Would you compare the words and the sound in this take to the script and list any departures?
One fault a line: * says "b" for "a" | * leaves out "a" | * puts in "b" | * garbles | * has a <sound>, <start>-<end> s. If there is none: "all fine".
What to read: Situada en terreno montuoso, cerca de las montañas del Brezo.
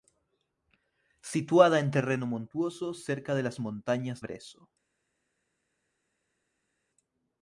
* leaves out "del"